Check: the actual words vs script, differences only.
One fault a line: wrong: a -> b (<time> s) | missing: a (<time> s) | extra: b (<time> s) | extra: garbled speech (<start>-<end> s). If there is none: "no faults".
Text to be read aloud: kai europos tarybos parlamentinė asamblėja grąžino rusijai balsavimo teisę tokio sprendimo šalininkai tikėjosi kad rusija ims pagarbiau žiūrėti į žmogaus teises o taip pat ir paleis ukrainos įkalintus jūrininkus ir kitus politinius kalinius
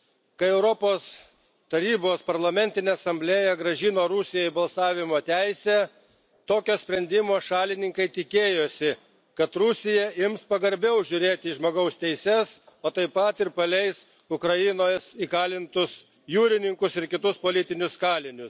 no faults